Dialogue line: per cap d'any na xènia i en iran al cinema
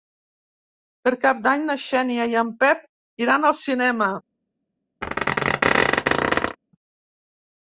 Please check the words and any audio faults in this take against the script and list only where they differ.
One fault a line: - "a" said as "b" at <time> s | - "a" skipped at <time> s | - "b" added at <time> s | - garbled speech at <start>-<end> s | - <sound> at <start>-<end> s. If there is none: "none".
- "pep" added at 2.6 s
- squeak at 5.0-6.6 s